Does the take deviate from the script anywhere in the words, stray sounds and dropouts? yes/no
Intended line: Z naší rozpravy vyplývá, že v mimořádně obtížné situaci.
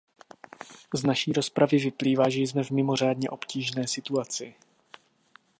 yes